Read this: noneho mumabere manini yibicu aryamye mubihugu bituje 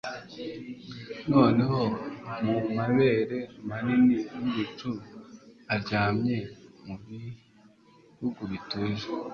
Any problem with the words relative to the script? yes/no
no